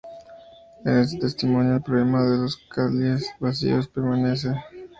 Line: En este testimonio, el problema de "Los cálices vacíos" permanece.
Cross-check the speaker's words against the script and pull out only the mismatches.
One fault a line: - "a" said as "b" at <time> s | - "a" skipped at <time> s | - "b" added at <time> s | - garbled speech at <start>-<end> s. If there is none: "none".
none